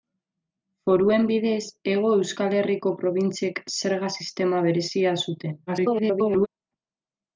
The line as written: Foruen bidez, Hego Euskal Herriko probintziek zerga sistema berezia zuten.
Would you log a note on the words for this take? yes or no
yes